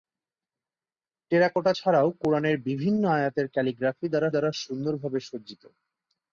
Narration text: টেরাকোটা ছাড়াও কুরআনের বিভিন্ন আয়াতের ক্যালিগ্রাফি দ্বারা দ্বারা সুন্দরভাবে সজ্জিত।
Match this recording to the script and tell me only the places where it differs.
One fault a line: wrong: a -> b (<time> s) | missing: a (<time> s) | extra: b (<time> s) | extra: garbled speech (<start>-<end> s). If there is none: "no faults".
no faults